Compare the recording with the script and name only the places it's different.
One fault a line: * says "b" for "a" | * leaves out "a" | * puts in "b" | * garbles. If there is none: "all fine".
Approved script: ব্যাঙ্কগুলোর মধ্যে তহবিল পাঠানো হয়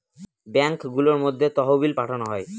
all fine